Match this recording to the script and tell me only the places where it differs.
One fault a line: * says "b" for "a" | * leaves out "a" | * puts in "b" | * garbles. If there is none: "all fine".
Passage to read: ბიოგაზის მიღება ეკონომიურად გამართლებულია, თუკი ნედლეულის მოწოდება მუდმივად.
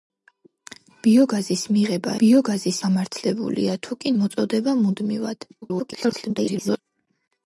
* says "ბიოგაზის" for "ეკონომიურად"
* leaves out "ნედლეულის"
* garbles